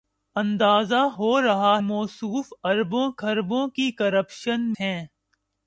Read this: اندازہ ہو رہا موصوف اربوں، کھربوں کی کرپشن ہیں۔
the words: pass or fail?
pass